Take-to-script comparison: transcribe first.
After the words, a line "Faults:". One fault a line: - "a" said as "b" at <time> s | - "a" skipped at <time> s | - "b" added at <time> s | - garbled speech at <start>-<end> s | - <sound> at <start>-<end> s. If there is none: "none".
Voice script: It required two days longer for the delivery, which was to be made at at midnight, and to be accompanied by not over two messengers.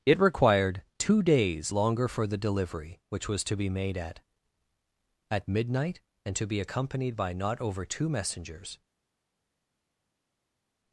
It required two days longer for the delivery, which was to be made at at midnight, and to be accompanied by not over two messengers.
Faults:
none